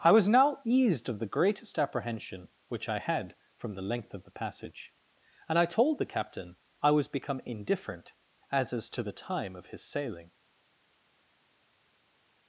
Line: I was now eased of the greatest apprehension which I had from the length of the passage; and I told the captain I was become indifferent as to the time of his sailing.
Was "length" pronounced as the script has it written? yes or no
yes